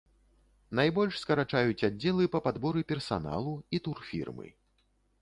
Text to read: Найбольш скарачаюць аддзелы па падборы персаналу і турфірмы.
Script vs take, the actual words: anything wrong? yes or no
no